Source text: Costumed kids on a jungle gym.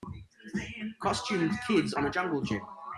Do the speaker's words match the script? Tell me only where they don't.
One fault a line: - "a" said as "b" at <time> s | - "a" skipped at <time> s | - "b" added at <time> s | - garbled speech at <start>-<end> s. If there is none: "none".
none